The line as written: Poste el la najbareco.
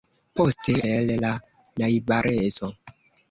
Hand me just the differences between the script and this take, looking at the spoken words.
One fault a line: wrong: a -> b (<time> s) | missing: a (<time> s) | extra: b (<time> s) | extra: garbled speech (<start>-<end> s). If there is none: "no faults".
no faults